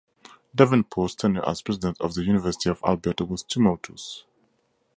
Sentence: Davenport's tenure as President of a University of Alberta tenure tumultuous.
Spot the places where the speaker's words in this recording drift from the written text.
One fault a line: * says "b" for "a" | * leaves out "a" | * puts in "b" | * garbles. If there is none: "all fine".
* says "the" for "a"
* says "was" for "tenure"